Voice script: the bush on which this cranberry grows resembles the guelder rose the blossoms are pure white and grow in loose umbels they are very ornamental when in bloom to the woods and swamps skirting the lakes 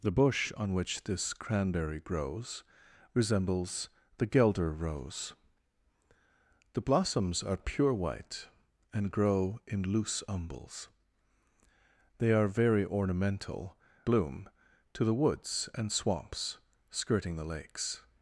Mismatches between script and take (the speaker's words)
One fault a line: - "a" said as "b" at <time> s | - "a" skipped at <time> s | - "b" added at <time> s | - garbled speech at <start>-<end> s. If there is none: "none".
- "when in" skipped at 13.8 s